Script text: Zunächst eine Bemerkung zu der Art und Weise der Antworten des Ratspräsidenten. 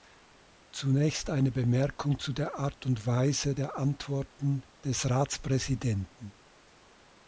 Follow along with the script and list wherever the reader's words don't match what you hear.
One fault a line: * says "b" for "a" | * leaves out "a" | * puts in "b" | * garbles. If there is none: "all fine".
all fine